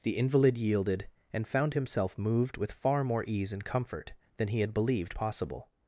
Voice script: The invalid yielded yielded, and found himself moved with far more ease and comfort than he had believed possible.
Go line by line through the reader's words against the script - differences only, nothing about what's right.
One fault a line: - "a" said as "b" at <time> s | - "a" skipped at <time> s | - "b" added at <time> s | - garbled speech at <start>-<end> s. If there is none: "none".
- "yielded" skipped at 1.1 s